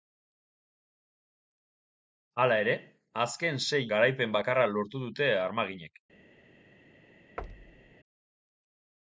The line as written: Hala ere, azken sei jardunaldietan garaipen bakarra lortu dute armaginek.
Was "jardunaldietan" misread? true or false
true